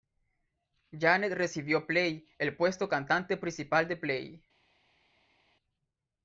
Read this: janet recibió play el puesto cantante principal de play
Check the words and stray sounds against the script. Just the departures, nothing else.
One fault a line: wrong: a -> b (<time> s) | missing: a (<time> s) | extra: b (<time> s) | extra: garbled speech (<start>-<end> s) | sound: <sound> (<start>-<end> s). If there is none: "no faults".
no faults